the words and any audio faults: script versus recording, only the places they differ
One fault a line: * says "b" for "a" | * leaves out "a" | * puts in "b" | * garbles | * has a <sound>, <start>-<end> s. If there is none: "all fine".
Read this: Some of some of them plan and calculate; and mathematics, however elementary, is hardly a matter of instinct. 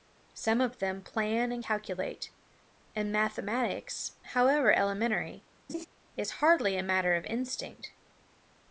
* leaves out "some of"
* has a laugh, 5.7-5.9 s